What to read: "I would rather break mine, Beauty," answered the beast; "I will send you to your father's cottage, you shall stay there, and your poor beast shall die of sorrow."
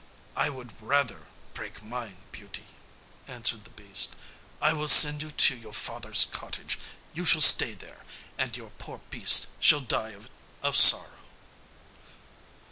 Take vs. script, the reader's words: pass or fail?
pass